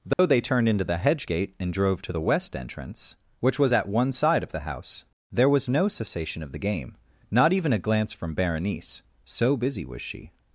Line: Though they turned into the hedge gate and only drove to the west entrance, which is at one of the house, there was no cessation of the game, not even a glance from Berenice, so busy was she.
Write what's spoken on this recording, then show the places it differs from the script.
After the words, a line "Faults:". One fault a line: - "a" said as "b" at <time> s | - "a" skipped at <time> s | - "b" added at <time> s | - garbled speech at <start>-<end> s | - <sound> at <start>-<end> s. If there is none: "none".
Though they turned into the hedge gate and drove to the west entrance, which was at one side of the house, there was no cessation of the game, not even a glance from Berenice, so busy was she.
Faults:
- dropout at 0.1-0.2 s
- "only" skipped at 1.7 s
- "is" said as "was" at 3.6 s
- "side" added at 4.1 s